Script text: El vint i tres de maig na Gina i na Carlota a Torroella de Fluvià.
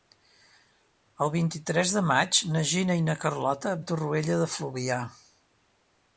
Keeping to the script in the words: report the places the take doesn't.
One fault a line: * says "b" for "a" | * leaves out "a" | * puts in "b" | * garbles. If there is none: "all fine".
all fine